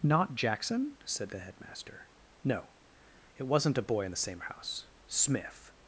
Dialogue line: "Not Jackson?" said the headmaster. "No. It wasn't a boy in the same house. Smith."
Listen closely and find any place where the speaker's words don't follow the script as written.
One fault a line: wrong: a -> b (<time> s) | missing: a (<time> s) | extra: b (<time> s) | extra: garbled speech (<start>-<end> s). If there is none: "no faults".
no faults